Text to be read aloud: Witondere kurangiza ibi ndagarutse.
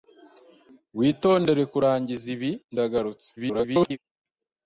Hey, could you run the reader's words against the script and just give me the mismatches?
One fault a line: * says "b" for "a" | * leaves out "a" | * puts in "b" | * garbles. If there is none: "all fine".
* garbles